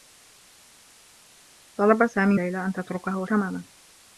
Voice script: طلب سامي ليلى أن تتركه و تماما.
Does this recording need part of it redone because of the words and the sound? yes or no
no